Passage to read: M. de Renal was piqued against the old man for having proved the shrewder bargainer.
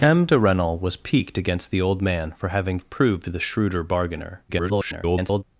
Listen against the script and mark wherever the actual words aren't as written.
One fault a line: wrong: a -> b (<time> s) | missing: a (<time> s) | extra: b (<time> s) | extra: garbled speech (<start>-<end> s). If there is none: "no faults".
extra: garbled speech (4.5-5.4 s)